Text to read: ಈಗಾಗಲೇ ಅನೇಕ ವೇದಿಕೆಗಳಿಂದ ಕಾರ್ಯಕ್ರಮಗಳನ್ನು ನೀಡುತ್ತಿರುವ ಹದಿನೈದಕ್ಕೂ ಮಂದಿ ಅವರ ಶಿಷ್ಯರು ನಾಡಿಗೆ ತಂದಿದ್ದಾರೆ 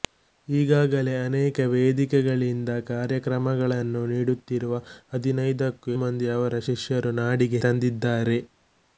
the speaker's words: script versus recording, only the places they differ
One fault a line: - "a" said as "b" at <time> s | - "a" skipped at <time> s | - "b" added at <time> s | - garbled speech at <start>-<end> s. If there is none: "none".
none